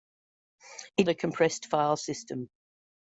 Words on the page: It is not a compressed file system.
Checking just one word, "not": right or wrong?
wrong